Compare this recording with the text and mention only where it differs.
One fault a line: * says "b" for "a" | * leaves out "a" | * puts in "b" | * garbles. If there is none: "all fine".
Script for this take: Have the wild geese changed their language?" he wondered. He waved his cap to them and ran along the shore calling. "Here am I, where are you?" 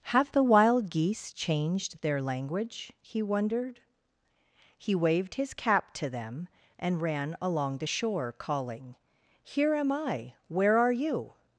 all fine